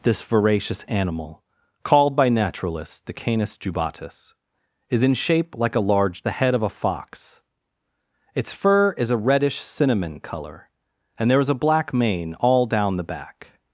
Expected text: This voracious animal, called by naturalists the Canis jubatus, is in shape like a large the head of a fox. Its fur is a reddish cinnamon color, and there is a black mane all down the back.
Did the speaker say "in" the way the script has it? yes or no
yes